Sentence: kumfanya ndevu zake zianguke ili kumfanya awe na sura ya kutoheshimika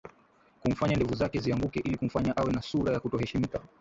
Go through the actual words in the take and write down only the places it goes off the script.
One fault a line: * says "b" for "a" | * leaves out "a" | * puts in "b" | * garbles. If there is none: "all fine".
all fine